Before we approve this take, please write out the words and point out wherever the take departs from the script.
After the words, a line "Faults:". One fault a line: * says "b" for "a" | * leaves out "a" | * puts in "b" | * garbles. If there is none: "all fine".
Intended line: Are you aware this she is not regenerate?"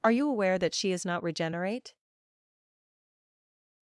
Are you aware that she is not regenerate?"
Faults:
* says "that" for "this"